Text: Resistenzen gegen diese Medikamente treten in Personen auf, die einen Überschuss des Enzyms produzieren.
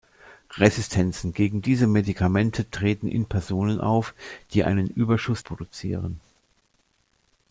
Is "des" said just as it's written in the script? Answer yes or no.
no